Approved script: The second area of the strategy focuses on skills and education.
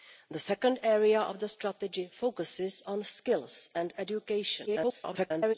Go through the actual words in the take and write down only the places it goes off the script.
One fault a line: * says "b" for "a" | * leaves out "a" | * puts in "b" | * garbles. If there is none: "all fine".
* garbles